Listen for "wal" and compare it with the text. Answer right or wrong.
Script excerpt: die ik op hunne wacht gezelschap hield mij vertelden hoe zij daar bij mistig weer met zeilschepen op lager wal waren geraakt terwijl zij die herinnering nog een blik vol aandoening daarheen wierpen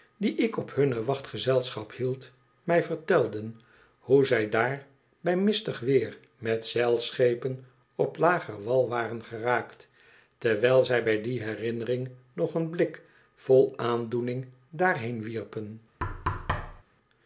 right